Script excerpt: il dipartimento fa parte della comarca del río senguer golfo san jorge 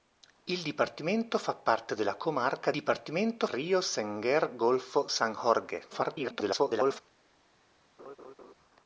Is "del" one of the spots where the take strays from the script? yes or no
yes